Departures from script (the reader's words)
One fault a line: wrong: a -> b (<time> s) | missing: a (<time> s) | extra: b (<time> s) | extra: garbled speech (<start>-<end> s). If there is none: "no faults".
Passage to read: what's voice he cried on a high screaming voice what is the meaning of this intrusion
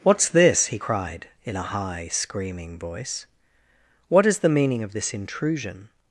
wrong: voice -> this (0.3 s)
wrong: on -> in (1.4 s)